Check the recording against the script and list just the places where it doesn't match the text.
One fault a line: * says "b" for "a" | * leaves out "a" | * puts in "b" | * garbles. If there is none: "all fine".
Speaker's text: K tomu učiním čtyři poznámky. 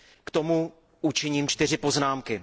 all fine